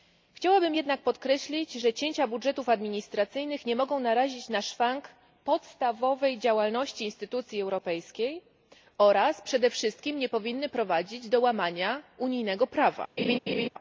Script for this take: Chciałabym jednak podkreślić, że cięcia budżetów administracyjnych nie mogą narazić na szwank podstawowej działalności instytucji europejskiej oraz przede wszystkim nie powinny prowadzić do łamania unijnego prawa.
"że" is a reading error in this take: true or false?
false